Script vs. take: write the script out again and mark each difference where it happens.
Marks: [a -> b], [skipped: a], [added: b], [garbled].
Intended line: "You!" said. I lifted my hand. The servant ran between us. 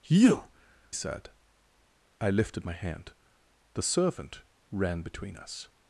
"You!" said. I lifted my hand. The servant ran between us.